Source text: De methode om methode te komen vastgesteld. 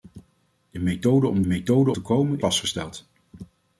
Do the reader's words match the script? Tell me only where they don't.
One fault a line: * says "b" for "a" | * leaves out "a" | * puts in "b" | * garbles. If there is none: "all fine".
all fine